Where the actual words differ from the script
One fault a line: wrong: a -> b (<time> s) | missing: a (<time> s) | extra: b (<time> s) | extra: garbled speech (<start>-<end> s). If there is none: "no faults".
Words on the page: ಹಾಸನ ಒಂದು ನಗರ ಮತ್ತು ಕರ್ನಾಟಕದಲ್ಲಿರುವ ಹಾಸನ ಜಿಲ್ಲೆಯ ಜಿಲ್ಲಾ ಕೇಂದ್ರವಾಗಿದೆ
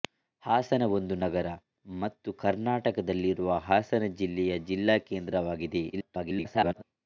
extra: garbled speech (5.9-6.8 s)